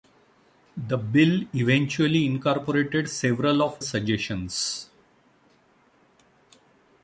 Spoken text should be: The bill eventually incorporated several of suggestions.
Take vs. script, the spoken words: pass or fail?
pass